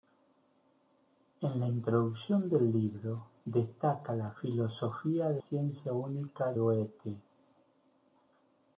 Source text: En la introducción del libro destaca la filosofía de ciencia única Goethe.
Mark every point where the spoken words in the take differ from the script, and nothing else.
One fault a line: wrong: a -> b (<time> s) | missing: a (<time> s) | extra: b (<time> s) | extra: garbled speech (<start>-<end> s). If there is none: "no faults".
no faults